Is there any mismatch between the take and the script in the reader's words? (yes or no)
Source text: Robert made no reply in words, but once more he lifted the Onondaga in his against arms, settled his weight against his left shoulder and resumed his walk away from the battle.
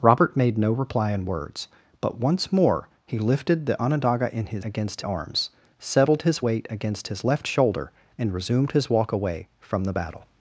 no